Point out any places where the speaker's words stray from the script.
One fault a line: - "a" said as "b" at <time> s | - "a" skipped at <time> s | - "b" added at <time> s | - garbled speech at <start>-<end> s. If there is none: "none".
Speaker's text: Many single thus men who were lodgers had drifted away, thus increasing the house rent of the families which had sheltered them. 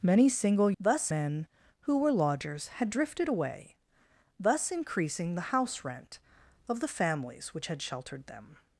none